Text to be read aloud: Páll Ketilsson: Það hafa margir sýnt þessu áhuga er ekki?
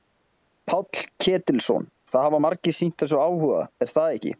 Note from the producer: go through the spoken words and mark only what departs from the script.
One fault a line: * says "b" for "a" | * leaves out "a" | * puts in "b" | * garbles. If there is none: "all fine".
* puts in "það"